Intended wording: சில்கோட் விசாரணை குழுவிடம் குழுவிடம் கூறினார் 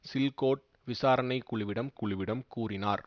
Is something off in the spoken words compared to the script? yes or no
no